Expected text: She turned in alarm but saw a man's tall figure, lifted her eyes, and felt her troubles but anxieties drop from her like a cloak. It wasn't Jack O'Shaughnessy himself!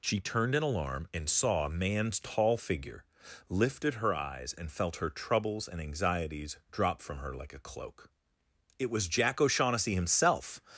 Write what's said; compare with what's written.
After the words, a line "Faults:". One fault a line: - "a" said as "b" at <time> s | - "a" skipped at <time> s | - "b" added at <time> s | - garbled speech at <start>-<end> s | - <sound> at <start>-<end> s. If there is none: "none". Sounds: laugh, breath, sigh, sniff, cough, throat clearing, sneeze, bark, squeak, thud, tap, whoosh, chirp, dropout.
She turned in alarm and saw a man's tall figure, lifted her eyes, and felt her troubles and anxieties drop from her like a cloak. It was Jack O'Shaughnessy himself!
Faults:
- "but" said as "and" at 1.1 s
- "but" said as "and" at 5.7 s
- "wasn't" said as "was" at 8.9 s